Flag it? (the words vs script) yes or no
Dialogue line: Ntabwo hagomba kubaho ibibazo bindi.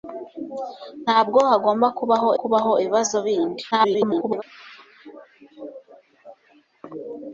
yes